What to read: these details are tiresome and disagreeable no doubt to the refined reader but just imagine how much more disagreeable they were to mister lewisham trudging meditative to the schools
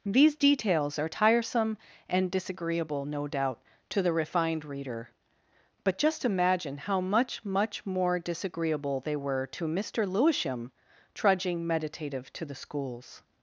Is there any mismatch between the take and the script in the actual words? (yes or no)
yes